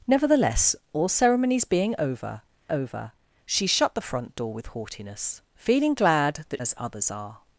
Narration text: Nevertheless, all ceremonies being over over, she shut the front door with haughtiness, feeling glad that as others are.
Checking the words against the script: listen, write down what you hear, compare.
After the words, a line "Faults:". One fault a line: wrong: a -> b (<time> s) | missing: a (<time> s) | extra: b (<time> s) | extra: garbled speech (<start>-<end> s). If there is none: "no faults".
Nevertheless, all ceremonies being over over, she shut the front door with haughtiness, feeling glad that as others are.
Faults:
no faults